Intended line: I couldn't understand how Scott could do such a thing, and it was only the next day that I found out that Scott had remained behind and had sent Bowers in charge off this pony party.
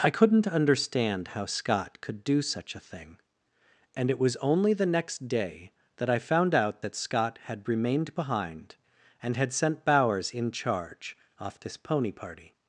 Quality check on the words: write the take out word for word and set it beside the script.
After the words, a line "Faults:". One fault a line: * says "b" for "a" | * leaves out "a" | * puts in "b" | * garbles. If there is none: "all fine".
I couldn't understand how Scott could do such a thing, and it was only the next day that I found out that Scott had remained behind and had sent Bowers in charge off this pony party.
Faults:
all fine